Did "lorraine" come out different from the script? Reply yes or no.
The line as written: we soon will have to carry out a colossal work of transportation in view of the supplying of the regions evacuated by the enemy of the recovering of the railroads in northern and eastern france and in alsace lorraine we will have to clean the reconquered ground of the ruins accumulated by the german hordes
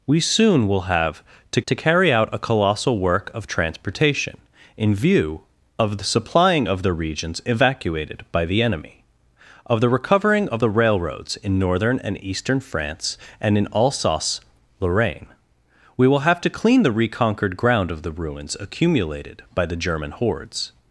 no